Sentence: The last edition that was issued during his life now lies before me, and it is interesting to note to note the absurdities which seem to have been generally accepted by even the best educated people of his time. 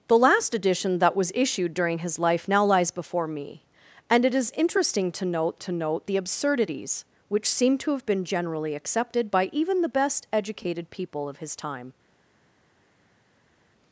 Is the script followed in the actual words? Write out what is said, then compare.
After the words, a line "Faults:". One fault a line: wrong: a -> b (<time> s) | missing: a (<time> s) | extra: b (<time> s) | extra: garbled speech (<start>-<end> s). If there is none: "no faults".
The last edition that was issued during his life now lies before me, and it is interesting to note to note the absurdities which seem to have been generally accepted by even the best educated people of his time.
Faults:
no faults